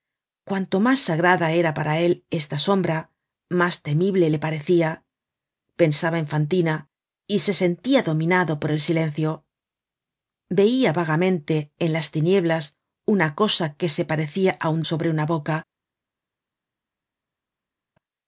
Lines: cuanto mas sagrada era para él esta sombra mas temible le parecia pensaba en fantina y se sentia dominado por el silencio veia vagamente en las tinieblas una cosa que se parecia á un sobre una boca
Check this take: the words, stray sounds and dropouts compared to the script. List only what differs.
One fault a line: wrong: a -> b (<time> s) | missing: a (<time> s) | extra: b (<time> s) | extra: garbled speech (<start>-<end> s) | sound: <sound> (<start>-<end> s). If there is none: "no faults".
no faults